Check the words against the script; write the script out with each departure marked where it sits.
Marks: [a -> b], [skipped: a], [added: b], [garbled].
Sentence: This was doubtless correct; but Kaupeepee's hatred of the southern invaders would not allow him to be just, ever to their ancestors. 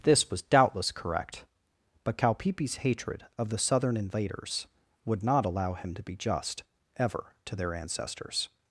This was doubtless correct; but Kaupeepee's hatred of the southern invaders would not allow him to be just, ever to their ancestors.